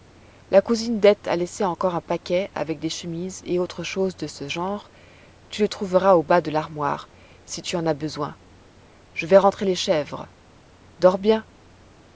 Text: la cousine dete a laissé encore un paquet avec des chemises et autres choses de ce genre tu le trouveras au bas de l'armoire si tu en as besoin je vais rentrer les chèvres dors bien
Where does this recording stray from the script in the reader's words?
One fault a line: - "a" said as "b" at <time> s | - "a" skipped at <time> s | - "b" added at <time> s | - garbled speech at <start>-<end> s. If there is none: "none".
none